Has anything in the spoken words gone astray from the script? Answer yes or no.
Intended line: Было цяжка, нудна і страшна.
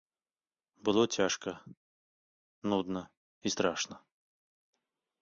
no